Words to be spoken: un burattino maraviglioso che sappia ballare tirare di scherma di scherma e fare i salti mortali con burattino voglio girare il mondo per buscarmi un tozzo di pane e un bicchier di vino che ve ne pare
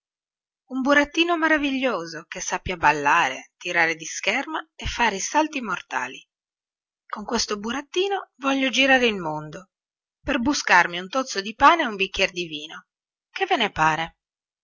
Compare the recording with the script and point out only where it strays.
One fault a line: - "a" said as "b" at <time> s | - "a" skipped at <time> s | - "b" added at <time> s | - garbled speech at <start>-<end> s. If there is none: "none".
- "di scherma" skipped at 4.6 s
- "questo" added at 7.2 s